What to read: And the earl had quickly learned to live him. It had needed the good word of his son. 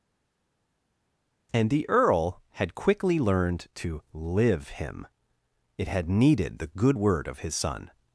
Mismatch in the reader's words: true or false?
false